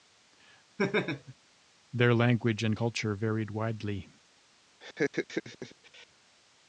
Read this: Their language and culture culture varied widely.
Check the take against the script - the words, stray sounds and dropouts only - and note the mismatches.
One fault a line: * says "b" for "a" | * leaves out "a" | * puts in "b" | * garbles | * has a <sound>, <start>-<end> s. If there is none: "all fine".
* has a laugh, 0.8-1.3 s
* leaves out "culture"
* has a laugh, 4.8-6.1 s